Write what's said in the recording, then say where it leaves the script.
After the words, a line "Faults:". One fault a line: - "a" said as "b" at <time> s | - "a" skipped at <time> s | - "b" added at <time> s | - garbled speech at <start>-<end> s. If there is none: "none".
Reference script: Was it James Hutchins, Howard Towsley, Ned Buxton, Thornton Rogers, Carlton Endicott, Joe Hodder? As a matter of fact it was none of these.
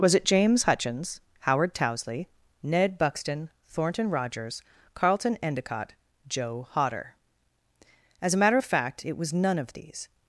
Was it James Hutchins, Howard Towsley, Ned Buxton, Thornton Rogers, Carlton Endicott, Joe Hodder? As a matter of fact it was none of these.
Faults:
none